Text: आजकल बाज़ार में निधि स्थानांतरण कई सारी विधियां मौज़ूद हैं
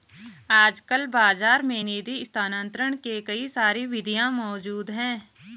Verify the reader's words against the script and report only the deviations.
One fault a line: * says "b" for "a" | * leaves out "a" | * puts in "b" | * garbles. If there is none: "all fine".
* puts in "के"